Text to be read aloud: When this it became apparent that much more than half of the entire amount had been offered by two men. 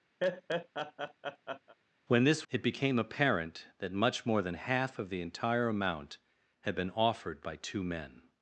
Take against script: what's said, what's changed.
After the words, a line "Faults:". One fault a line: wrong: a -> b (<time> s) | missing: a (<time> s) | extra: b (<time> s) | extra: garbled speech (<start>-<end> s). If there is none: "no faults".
When this it became apparent that much more than half of the entire amount had been offered by two men.
Faults:
no faults